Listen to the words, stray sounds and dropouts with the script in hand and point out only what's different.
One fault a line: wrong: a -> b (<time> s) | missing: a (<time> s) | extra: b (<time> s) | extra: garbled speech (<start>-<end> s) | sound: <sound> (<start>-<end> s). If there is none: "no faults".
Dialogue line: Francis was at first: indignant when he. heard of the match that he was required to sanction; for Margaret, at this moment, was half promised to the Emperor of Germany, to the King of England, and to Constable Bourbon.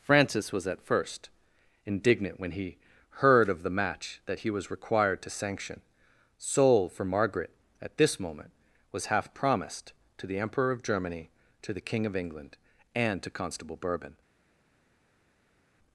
extra: soul (6.4 s)